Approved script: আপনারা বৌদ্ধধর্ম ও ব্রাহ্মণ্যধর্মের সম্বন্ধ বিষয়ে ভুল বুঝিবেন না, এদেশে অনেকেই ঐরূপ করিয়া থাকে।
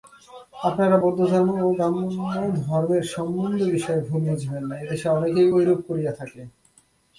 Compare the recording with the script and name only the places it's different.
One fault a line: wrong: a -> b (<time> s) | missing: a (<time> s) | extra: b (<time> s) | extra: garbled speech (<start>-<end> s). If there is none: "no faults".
no faults